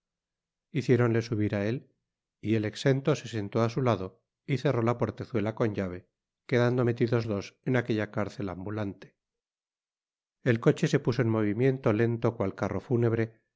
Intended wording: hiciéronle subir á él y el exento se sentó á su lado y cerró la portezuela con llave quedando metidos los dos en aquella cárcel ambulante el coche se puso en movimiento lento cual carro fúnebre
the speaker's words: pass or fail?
fail